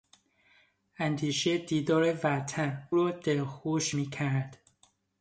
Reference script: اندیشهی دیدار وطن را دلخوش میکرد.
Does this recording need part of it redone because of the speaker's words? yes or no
no